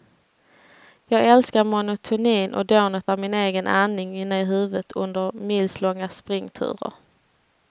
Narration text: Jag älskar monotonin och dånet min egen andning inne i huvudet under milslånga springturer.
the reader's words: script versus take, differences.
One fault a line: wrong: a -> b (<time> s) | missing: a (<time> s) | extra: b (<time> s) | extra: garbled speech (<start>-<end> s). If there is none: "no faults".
extra: av (3.1 s)